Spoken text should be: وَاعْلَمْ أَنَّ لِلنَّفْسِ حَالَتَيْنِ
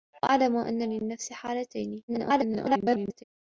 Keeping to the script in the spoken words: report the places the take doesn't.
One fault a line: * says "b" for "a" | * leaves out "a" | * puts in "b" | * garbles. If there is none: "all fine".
* garbles